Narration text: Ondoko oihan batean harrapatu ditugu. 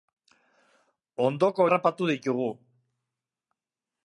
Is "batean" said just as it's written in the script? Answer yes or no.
no